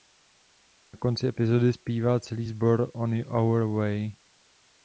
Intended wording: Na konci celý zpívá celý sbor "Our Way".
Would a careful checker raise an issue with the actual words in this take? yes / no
yes